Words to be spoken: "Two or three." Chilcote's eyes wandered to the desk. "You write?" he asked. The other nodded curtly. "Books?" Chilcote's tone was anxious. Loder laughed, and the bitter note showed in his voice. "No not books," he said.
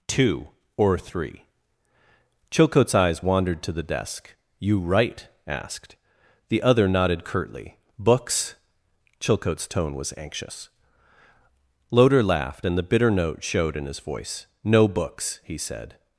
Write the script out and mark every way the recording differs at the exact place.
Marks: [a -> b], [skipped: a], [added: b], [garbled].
"Two or three." Chilcote's eyes wandered to the desk. "You write?" [skipped: he] asked. The other nodded curtly. "Books?" Chilcote's tone was anxious. Loder laughed, and the bitter note showed in his voice. "No [skipped: not] books," he said.